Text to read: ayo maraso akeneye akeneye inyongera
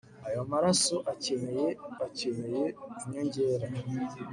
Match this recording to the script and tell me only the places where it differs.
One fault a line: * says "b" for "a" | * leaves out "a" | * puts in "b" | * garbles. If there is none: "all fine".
all fine